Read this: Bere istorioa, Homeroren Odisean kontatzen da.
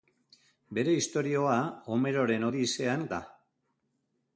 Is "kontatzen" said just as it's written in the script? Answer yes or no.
no